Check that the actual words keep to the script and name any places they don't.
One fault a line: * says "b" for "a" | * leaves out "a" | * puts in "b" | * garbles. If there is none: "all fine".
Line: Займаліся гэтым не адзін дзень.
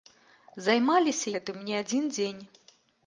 all fine